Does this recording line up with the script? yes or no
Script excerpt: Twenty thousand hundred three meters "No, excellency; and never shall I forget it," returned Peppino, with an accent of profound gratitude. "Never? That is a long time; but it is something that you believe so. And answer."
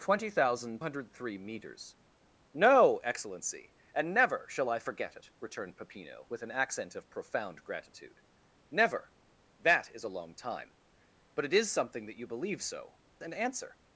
yes